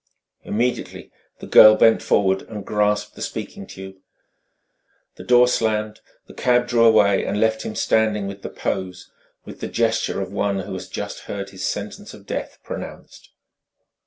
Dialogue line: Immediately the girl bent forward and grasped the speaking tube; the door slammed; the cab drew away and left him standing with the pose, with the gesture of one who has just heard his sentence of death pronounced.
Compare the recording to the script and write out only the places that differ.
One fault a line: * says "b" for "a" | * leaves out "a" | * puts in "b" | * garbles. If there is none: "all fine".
all fine